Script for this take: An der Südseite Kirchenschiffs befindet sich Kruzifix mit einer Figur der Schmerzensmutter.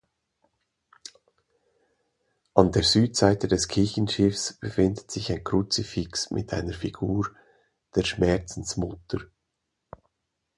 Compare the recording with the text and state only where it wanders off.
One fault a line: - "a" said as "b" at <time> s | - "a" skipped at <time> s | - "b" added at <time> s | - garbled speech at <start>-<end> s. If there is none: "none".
- "des" added at 3.5 s
- "ein" added at 5.3 s